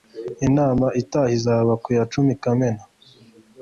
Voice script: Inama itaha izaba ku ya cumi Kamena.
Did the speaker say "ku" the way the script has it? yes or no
yes